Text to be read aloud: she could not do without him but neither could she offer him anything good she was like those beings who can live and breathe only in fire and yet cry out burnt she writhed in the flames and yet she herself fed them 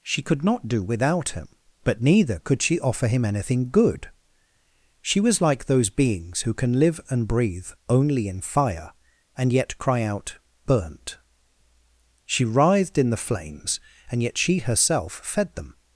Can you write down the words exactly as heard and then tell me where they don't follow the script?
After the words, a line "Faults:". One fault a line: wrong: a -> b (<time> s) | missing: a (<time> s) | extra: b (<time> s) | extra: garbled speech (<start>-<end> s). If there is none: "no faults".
she could not do without him but neither could she offer him anything good she was like those beings who can live and breathe only in fire and yet cry out burnt she writhed in the flames and yet she herself fed them
Faults:
no faults